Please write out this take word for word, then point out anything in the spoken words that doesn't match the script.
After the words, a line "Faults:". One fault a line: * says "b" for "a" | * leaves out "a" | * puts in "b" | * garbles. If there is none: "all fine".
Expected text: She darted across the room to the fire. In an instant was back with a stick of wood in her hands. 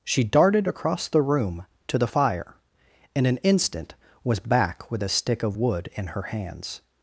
She darted across the room to the fire. In an instant was back with a stick of wood in her hands.
Faults:
all fine